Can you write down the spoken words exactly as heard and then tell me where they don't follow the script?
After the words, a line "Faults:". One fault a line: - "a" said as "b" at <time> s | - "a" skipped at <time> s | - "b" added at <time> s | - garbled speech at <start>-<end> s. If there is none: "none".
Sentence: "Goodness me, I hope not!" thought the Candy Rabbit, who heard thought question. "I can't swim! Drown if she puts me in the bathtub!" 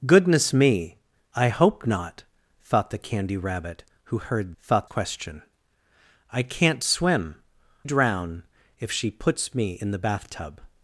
"Goodness me, I hope not!" thought the Candy Rabbit, who heard thought question. "I can't swim! Drown if she puts me in the bathtub!"
Faults:
none